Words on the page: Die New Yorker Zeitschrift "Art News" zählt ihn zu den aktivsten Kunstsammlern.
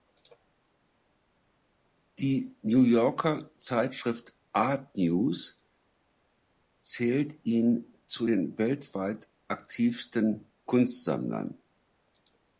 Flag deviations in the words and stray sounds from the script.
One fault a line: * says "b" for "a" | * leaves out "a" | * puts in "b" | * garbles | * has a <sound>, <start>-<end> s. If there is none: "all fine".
* puts in "weltweit"